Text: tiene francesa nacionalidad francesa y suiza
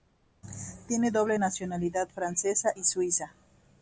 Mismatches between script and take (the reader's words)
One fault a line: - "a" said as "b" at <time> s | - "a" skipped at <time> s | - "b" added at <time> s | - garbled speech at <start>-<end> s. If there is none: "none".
- "francesa" said as "doble" at 1.1 s